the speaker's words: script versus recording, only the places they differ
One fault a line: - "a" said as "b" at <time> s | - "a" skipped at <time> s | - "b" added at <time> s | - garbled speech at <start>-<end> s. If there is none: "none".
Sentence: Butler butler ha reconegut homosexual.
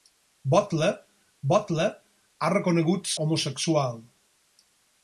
none